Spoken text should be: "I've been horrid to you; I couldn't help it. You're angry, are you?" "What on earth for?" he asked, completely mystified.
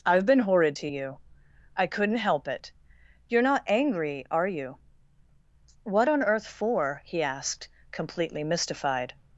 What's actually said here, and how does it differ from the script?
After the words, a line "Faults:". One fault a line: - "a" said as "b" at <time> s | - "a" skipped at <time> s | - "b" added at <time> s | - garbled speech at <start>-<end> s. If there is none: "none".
"I've been horrid to you; I couldn't help it. You're not angry, are you?" "What on earth for?" he asked, completely mystified.
Faults:
- "not" added at 3.4 s